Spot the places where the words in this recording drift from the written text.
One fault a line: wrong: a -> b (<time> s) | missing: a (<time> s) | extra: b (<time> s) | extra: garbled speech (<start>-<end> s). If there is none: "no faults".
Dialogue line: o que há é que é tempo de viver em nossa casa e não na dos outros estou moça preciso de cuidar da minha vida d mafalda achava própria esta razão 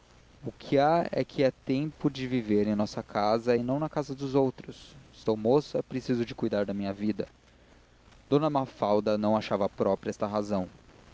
extra: casa (3.9 s)
extra: não (9.2 s)